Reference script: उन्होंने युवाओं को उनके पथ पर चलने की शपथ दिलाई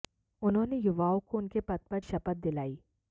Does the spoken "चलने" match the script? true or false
false